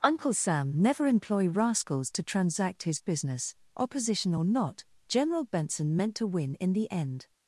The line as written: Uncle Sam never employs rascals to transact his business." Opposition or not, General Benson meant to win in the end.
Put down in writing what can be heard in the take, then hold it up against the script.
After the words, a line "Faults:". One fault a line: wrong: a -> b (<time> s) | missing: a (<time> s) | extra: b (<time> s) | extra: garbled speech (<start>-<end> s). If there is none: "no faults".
Uncle Sam never employ rascals to transact his business." Opposition or not, General Benson meant to win in the end.
Faults:
wrong: employs -> employ (1.1 s)